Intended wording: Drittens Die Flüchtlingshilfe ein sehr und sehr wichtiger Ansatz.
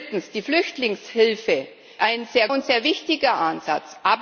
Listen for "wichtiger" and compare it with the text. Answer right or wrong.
right